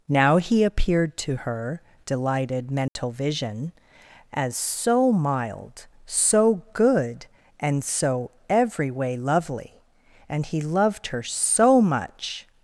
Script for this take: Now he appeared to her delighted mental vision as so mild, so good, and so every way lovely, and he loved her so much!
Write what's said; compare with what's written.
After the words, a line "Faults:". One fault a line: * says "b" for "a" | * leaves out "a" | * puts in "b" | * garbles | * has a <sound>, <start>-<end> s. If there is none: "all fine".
Now he appeared to her delighted mental vision as so mild, so good, and so every way lovely, and he loved her so much!
Faults:
* has a dropout, 2.9-3.0 s